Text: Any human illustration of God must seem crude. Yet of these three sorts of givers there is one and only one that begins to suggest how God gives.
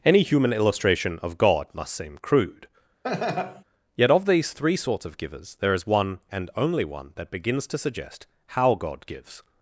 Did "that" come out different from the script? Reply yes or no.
no